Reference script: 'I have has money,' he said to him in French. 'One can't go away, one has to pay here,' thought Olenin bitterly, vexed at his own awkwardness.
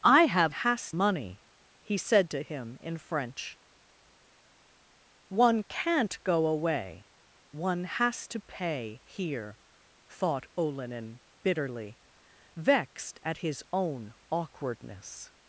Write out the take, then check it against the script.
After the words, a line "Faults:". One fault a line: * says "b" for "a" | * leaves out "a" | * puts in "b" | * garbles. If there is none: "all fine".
'I have has money,' he said to him in French. 'One can't go away, one has to pay here,' thought Olenin bitterly, vexed at his own awkwardness.
Faults:
all fine